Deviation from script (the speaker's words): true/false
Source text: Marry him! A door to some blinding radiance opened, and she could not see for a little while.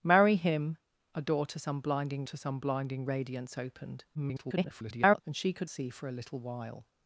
true